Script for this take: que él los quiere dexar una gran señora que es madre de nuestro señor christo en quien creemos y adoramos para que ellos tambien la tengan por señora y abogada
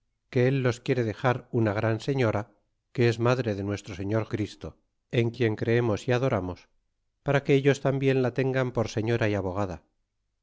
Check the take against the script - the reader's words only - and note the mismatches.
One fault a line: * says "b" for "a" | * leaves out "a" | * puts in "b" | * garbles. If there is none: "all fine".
all fine